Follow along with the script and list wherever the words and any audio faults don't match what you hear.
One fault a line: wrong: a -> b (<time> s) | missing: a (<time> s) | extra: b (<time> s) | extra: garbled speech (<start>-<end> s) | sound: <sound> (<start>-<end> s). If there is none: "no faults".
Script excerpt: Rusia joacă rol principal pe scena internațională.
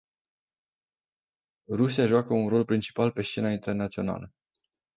extra: un (2.3 s)